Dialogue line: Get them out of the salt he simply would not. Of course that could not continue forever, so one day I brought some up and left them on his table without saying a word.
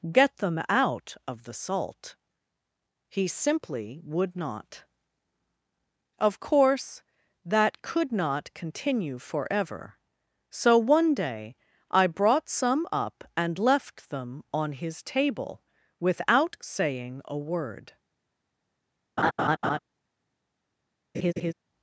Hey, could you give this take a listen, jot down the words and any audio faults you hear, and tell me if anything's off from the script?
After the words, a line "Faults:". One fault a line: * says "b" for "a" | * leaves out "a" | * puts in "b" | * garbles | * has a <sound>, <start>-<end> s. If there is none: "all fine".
Get them out of the salt he simply would not. Of course that could not continue forever, so one day I brought some up and left them on his table without saying a word.
Faults:
* has a laugh, 19.2-19.8 s
* has a laugh, 21.1-21.5 s